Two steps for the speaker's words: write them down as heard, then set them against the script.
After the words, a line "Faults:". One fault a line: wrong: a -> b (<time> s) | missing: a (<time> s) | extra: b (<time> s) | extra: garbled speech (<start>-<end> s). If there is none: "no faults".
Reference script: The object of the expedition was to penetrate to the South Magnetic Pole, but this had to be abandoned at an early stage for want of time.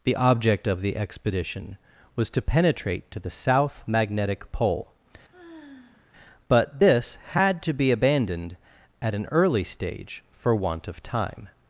The object of the expedition was to penetrate to the South Magnetic Pole, but this had to be abandoned at an early stage for want of time.
Faults:
no faults